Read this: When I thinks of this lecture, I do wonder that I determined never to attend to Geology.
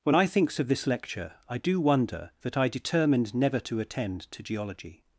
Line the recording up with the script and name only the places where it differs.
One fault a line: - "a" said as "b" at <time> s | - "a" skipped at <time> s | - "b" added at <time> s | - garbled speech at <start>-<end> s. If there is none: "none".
none